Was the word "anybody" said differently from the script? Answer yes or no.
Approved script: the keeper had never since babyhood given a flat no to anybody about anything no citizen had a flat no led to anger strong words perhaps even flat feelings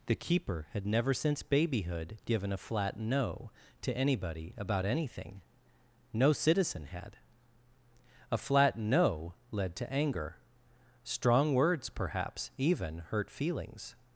no